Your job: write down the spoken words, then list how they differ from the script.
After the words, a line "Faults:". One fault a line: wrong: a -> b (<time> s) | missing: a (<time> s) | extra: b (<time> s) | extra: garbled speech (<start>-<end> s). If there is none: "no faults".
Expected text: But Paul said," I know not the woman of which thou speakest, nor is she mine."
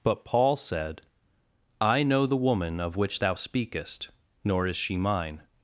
But Paul said," I know the woman of which thou speakest, nor is she mine."
Faults:
missing: not (2.2 s)